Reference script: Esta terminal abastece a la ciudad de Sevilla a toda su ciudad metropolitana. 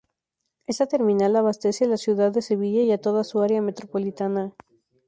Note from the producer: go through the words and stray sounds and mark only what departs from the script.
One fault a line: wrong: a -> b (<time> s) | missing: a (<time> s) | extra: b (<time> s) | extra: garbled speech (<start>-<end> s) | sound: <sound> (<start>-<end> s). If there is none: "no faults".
extra: y (2.8 s)
wrong: ciudad -> área (3.4 s)